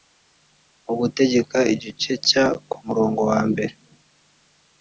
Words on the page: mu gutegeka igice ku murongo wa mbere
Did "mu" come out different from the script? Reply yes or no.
no